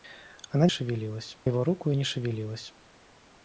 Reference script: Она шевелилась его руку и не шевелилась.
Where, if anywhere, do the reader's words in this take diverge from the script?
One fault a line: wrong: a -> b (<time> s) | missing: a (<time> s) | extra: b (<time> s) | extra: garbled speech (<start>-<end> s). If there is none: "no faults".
no faults